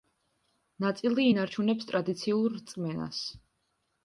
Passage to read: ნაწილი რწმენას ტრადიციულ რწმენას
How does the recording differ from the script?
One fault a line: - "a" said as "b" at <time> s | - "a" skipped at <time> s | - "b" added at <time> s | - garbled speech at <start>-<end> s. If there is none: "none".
- "რწმენას" said as "ინარჩუნებს" at 1.3 s